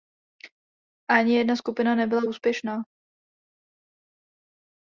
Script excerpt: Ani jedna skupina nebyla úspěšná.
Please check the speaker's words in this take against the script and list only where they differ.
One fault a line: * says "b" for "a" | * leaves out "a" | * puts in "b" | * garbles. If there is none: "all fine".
all fine